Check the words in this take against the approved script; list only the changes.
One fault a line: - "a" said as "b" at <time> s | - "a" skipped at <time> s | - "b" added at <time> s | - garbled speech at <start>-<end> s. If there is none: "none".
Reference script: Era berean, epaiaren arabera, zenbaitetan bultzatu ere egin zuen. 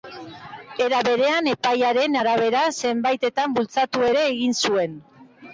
none